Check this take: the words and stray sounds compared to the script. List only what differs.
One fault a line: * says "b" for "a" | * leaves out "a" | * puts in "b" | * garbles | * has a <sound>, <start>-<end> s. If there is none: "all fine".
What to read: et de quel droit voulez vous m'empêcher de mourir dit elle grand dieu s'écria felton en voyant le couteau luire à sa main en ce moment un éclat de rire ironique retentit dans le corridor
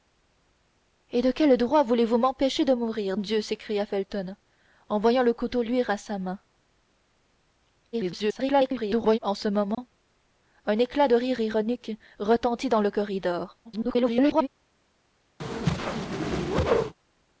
* leaves out "dit elle grand"
* garbles
* has a dropout, 9.7-9.8 s
* garbles
* has a whoosh, 15.4-16.9 s